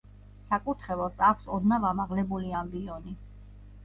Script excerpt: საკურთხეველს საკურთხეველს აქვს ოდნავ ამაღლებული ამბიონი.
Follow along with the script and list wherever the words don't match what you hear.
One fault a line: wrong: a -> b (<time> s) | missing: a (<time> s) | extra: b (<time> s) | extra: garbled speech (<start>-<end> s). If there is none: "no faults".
missing: საკურთხეველს (1.2 s)